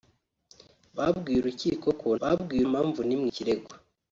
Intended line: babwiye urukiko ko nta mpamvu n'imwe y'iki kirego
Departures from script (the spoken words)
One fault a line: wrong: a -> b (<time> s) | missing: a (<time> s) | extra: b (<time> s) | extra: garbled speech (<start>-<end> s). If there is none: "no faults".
wrong: nta -> babwiye (2.2 s)
missing: y'iki (3.3 s)